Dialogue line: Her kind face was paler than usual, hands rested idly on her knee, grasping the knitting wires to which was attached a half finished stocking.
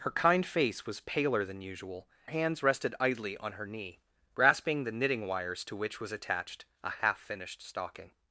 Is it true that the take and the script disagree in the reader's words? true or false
false